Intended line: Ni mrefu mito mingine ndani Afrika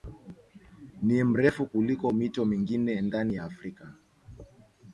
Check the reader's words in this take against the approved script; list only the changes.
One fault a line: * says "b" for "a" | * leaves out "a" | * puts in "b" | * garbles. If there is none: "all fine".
* puts in "kuliko"
* puts in "ya"